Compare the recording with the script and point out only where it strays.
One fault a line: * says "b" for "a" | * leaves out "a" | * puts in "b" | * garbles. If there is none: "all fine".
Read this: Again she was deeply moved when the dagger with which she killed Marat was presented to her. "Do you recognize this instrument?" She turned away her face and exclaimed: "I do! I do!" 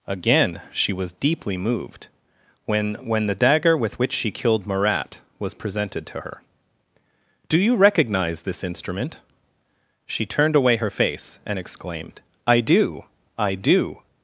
* puts in "when"